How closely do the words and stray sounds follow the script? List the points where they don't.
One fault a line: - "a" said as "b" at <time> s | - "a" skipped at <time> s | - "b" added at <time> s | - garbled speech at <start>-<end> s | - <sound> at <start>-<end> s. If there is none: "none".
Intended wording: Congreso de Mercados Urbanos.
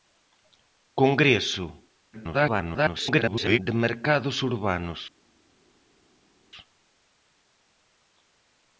- garbled speech at 2.1-3.6 s